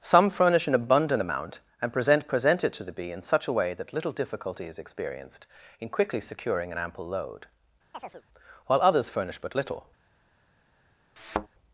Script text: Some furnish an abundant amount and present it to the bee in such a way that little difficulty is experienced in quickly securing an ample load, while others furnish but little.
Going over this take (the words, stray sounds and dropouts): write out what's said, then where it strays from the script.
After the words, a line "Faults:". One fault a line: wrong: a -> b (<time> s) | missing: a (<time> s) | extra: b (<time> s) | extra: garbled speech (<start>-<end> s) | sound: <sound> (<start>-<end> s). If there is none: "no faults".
Some furnish an abundant amount and present present it to the bee in such a way that little difficulty is experienced in quickly securing an ample load, while others furnish but little.
Faults:
extra: present (2.3 s)
sound: chirp (7.9-8.2 s)
sound: thud (11.2-11.5 s)